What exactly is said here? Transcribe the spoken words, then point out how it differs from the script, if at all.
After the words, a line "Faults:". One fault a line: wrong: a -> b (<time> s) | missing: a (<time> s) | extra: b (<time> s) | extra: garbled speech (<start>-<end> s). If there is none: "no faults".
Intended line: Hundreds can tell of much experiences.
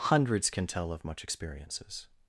Hundreds can tell of much experiences.
Faults:
no faults